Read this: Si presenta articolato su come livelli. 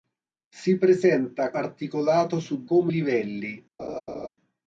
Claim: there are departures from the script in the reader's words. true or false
false